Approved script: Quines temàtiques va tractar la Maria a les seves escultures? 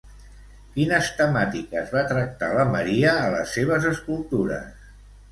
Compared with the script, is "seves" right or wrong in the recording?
right